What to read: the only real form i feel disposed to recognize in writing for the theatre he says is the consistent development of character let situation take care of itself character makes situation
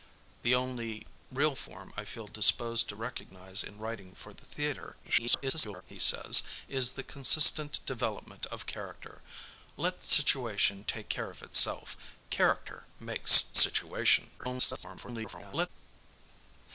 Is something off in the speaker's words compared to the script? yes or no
yes